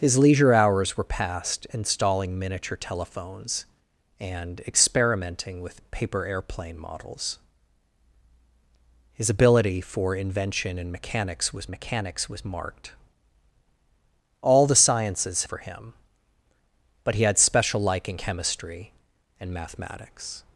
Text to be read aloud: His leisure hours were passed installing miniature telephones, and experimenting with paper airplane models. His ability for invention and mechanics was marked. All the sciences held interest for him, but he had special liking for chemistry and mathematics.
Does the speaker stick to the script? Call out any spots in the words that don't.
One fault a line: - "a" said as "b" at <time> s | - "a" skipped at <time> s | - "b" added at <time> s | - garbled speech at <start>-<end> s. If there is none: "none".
- "mechanics was" added at 11.7 s
- "held interest" skipped at 15.4 s
- "for" skipped at 18.2 s